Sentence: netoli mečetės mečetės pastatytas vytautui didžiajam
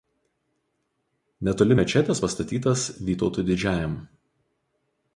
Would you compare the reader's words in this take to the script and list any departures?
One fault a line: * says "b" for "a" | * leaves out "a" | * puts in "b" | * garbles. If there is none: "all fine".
* leaves out "mečetės"